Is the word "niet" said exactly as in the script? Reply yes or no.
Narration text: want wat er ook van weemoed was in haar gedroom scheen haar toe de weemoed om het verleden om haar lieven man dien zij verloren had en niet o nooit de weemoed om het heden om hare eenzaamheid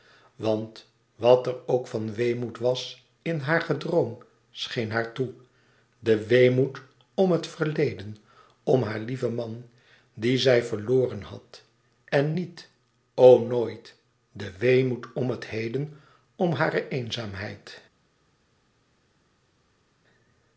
yes